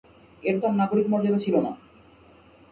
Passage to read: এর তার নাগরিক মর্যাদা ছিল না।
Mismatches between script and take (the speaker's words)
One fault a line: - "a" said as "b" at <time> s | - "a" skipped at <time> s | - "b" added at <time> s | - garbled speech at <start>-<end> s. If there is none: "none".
none